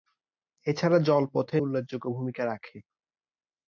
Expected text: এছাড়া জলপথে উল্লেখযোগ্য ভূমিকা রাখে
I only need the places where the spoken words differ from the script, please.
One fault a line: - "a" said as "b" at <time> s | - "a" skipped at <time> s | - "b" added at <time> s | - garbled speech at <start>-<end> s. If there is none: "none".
none